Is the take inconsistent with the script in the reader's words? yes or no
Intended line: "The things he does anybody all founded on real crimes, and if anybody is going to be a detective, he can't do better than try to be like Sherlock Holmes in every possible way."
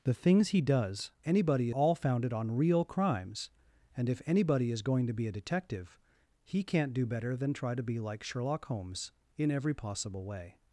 no